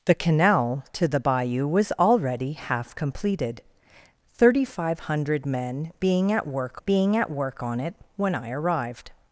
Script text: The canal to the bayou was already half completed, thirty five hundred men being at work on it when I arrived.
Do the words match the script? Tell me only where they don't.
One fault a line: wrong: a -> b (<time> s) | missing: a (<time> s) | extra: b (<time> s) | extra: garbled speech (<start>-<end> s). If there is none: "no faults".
extra: being at work (6.8 s)